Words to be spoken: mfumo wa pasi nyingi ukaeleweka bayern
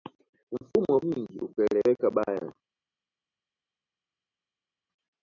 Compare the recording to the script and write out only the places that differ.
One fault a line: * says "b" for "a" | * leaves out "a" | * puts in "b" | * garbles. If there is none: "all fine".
* leaves out "pasi"